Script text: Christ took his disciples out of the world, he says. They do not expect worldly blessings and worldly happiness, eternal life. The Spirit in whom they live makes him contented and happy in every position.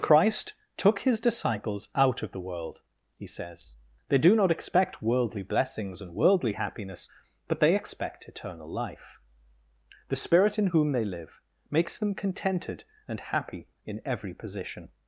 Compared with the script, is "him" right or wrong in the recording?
wrong